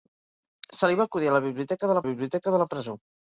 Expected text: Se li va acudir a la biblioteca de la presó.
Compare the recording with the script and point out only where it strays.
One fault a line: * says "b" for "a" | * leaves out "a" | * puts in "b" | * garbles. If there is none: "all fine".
* puts in "biblioteca de"